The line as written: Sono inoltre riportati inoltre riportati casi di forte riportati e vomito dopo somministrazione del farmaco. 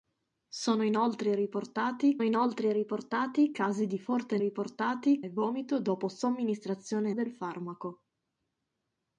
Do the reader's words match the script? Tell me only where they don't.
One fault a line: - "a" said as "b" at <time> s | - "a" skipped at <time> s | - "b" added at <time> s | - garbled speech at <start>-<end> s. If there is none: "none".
none